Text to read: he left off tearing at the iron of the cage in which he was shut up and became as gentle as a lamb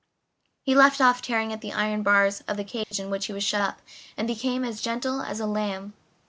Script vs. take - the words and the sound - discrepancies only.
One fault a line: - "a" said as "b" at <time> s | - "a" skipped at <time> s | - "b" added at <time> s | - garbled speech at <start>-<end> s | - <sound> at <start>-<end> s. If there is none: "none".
- "bars" added at 2.0 s
- dropout at 2.8-2.9 s